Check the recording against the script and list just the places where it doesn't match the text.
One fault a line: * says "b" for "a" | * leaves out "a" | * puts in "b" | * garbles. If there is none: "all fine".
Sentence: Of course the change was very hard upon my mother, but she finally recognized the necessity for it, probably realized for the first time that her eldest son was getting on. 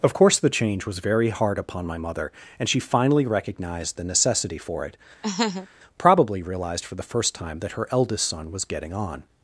* says "and" for "but"